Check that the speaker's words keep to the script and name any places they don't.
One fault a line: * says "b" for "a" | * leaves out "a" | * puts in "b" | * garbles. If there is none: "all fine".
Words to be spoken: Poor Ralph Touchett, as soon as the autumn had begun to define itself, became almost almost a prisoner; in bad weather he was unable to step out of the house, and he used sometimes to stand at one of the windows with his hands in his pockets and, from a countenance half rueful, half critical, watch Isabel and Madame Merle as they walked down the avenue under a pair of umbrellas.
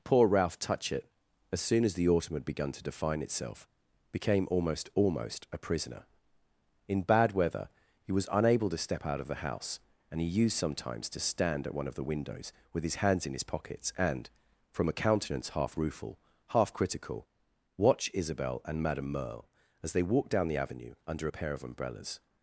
all fine